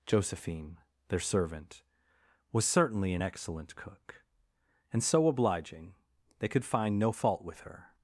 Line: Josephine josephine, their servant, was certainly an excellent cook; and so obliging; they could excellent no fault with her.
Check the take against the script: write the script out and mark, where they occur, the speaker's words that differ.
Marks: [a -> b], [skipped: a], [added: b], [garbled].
Josephine [skipped: josephine,] their servant, was certainly an excellent cook; and so obliging; they could [excellent -> find] no fault with her.